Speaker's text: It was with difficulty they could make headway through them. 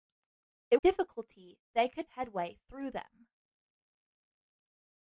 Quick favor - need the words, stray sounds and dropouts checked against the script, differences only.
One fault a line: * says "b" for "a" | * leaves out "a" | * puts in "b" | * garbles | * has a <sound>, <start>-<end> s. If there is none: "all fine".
* leaves out "was with"
* leaves out "make"